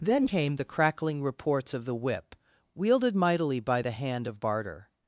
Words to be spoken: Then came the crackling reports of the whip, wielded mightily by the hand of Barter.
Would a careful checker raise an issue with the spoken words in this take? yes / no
no